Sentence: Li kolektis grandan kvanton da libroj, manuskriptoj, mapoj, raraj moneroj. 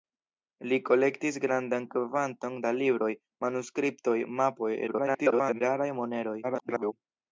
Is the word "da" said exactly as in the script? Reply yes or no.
yes